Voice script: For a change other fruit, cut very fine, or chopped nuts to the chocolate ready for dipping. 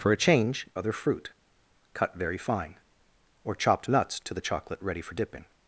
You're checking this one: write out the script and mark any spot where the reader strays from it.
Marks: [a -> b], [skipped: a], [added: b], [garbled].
For a change other fruit, cut very fine, or chopped nuts to the chocolate ready for dipping.